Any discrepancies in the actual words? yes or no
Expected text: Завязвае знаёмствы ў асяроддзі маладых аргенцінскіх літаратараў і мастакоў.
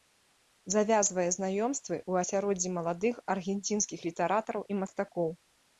no